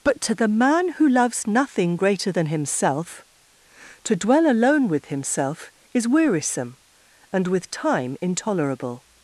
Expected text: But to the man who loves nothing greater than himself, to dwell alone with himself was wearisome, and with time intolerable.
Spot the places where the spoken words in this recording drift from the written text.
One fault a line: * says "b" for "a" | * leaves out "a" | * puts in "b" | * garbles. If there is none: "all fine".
* says "is" for "was"